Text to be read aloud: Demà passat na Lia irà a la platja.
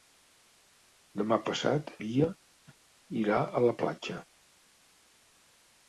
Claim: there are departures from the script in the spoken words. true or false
true